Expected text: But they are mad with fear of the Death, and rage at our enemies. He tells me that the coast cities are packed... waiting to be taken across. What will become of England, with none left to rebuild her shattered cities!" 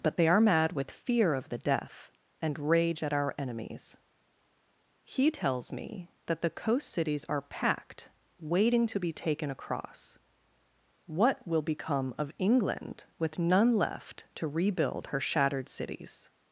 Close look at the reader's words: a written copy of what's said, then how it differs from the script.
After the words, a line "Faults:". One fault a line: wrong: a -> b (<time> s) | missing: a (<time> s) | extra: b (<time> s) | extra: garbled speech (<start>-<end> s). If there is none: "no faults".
But they are mad with fear of the Death, and rage at our enemies. He tells me that the coast cities are packed... waiting to be taken across. What will become of England, with none left to rebuild her shattered cities!"
Faults:
no faults